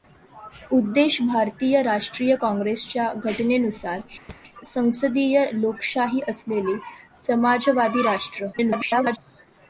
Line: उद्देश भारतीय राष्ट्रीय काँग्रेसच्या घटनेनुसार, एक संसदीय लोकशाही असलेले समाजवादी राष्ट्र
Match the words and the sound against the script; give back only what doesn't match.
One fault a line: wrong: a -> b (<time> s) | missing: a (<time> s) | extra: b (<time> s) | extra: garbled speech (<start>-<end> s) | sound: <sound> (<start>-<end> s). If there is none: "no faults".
missing: एक (4.0 s)
sound: thud (4.3-4.4 s)
extra: garbled speech (8.5-9.2 s)